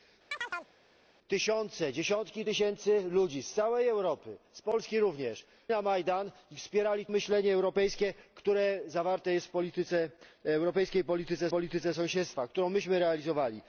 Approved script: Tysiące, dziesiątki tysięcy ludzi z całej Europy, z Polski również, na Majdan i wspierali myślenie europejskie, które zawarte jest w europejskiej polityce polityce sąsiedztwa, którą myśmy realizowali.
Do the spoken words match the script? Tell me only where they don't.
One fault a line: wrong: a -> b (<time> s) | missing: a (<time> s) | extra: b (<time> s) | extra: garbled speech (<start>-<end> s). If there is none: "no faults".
no faults